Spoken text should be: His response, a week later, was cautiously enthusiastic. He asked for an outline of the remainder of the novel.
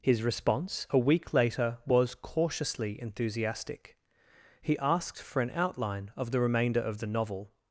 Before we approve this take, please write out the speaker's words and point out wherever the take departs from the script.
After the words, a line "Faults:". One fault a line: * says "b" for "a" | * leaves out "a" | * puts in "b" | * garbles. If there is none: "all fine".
His response, a week later, was cautiously enthusiastic. He asked for an outline of the remainder of the novel.
Faults:
all fine